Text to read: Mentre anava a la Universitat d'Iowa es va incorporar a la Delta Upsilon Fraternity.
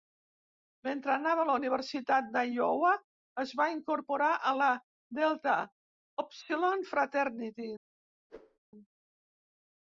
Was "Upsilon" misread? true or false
false